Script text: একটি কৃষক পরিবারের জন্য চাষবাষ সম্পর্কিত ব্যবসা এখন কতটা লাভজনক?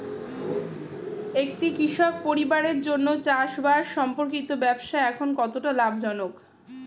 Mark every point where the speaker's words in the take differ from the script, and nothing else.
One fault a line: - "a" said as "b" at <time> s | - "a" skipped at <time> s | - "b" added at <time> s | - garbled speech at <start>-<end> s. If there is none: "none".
none